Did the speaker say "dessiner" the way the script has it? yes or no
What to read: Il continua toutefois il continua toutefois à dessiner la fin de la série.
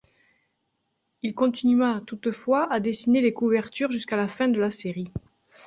no